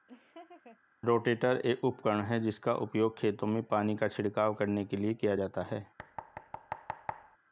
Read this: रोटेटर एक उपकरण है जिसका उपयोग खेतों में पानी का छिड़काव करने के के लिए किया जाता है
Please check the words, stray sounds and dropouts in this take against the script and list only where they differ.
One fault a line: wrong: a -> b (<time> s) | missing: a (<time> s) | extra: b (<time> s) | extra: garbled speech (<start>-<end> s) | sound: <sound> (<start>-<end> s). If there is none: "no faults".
sound: laugh (0.1-0.8 s)
missing: के (5.0 s)
sound: thud (6.0-7.4 s)